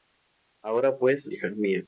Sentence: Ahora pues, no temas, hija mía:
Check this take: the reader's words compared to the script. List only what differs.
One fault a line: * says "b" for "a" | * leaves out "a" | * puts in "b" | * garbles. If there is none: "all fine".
* leaves out "no temas"